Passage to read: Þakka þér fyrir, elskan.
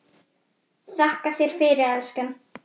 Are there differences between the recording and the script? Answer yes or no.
no